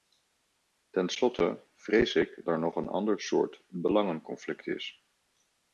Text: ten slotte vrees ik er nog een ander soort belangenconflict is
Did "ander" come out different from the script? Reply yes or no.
no